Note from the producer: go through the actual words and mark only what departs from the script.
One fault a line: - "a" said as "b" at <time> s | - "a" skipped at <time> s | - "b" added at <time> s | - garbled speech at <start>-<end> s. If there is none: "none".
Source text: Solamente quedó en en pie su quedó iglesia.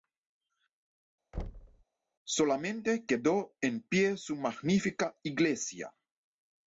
- "en" skipped at 3.8 s
- "quedó" said as "magnífica" at 4.4 s